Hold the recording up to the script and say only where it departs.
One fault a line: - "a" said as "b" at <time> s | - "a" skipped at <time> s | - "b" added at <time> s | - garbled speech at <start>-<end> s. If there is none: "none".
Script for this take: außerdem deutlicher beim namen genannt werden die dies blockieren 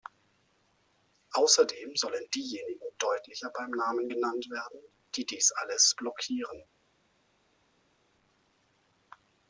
- "sollen diejenigen" added at 1.9 s
- "alles" added at 5.6 s